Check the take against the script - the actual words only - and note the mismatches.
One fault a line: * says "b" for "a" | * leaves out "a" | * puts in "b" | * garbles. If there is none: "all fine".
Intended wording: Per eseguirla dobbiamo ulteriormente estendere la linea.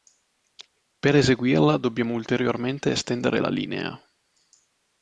all fine